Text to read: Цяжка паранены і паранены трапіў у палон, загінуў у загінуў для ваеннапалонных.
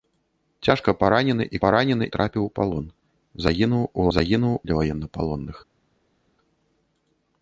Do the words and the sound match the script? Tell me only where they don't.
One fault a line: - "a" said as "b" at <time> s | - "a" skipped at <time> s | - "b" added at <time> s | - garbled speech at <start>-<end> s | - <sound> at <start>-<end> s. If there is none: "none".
none